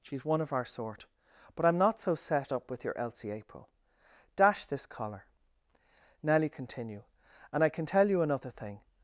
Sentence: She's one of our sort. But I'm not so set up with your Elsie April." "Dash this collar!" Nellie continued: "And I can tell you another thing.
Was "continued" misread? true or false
true